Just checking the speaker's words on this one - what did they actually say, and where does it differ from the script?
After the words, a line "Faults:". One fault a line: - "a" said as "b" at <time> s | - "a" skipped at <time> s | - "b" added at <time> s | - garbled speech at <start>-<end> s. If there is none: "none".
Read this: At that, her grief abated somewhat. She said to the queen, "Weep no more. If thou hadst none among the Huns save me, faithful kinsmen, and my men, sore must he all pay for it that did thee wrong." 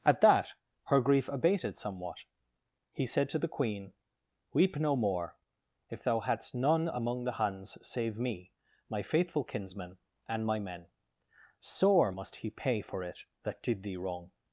At that, her grief abated somewhat. He said to the queen, "Weep no more. If thou hadst none among the Huns save me, my faithful kinsmen, and my men, sore must he pay for it that did thee wrong."
Faults:
- "She" said as "He" at 2.9 s
- "my" added at 8.9 s
- "all" skipped at 12.5 s